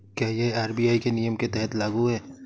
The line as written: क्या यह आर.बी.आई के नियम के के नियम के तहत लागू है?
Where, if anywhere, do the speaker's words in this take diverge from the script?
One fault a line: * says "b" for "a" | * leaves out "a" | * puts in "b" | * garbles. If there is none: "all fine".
* leaves out "के नियम के"